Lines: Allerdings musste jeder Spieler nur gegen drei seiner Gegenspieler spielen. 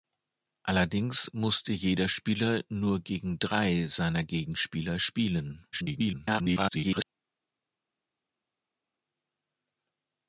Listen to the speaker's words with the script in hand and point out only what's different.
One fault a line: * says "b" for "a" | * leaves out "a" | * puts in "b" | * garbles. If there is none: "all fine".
* garbles